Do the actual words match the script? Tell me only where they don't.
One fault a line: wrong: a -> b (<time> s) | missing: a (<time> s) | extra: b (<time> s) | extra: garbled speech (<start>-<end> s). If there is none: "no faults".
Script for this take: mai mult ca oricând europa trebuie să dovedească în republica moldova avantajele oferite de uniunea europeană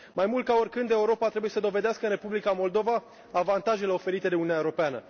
no faults